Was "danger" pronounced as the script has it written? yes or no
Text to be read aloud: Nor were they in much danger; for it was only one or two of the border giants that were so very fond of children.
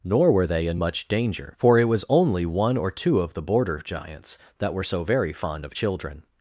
yes